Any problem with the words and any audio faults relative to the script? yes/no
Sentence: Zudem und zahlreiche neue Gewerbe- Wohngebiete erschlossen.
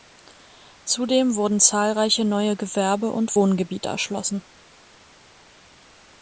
yes